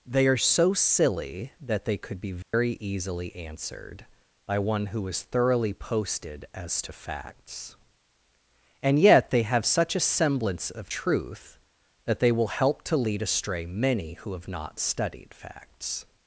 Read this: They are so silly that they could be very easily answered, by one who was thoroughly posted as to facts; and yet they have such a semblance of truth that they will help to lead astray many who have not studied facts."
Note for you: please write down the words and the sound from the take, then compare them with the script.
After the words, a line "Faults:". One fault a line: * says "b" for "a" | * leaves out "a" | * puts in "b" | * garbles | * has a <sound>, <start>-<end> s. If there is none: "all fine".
They are so silly that they could be very easily answered, by one who is thoroughly posted as to facts; and yet they have such a semblance of truth that they will help to lead astray many who have not studied facts."
Faults:
* has a dropout, 2.4-2.5 s
* says "is" for "was"